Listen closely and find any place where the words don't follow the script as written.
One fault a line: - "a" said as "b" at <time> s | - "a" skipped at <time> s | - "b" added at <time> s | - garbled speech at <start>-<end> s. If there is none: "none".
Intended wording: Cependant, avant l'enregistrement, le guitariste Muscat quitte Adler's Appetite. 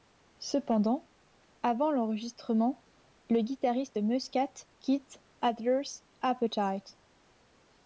none